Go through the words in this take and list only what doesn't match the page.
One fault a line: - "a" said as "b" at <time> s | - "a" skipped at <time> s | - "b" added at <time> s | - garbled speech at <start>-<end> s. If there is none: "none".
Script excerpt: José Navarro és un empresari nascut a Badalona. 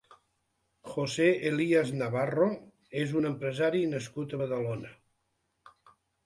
- "Elías" added at 1.5 s